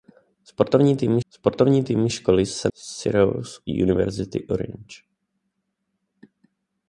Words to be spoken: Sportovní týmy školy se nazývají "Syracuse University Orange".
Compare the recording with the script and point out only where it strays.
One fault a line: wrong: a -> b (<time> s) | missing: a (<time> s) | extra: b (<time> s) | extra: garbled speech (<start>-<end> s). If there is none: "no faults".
extra: sportovní týmy (1.3 s)
missing: nazývají (2.7 s)